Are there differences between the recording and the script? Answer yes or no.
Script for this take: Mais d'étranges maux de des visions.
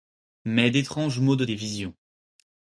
no